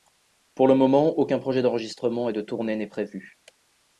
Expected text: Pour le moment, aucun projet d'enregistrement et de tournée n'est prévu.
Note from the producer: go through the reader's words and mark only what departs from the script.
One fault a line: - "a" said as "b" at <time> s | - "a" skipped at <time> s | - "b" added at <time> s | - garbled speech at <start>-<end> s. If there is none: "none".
none